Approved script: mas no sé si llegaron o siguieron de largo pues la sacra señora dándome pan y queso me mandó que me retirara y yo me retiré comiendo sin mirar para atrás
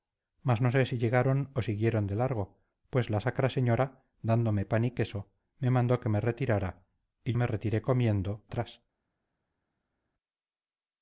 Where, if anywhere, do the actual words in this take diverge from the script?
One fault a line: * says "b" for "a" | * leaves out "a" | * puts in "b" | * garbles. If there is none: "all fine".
* leaves out "yo"
* leaves out "sin mirar para"